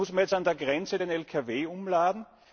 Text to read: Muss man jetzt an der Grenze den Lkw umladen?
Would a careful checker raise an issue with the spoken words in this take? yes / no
no